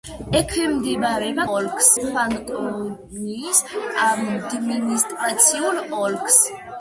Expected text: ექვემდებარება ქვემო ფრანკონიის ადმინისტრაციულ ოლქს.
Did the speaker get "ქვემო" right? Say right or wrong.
wrong